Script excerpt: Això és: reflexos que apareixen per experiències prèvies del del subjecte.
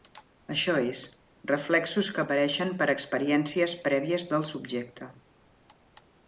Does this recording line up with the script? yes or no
no